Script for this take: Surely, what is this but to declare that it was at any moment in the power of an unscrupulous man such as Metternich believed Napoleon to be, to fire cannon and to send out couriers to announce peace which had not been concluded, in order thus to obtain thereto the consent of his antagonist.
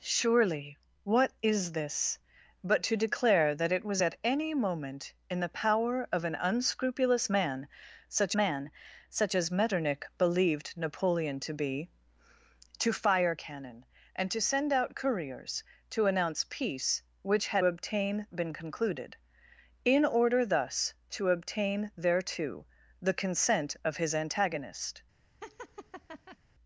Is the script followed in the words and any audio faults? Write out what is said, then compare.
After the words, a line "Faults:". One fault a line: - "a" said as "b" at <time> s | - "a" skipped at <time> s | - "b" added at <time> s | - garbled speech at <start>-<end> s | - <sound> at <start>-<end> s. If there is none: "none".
Surely, what is this but to declare that it was at any moment in the power of an unscrupulous man such man such as Metternich believed Napoleon to be, to fire cannon and to send out couriers to announce peace which had obtain been concluded, in order thus to obtain thereto the consent of his antagonist.
Faults:
- "man such" added at 8.3 s
- "not" said as "obtain" at 17.6 s
- laugh at 25.4-26.4 s